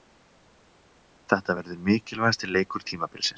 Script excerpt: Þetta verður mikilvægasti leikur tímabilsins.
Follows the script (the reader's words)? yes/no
yes